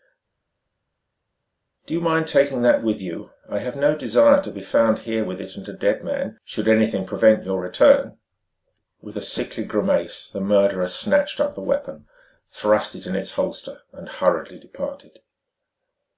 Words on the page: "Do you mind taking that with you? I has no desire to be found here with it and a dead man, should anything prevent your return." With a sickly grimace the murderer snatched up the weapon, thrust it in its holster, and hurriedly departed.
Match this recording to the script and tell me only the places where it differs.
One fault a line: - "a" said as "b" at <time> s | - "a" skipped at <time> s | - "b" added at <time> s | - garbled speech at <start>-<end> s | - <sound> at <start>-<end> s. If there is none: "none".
- "has" said as "have" at 3.6 s